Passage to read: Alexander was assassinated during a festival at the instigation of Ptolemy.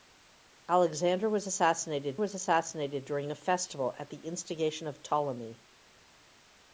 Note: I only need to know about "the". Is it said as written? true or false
true